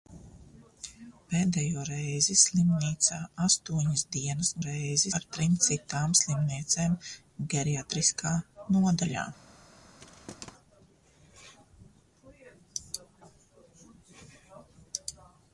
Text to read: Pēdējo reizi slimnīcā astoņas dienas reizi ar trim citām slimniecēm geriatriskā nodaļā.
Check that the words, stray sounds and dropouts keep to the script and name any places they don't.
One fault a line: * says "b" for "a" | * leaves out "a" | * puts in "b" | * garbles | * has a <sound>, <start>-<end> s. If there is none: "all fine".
* has a thud, 10.0-10.5 s